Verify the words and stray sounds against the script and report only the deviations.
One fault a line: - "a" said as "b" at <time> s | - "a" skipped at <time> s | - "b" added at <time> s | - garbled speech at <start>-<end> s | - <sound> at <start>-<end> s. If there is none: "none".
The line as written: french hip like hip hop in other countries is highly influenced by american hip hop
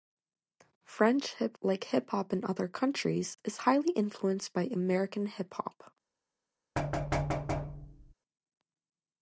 - thud at 6.8-8.1 s